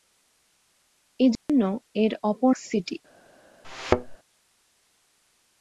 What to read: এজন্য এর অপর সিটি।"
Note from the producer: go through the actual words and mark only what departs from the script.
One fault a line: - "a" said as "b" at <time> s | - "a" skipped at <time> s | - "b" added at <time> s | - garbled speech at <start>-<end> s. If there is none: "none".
none